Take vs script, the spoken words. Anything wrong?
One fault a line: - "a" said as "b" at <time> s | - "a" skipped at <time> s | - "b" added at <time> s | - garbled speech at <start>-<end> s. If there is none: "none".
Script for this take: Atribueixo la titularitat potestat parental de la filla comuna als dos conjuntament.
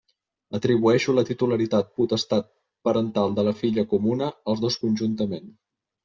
none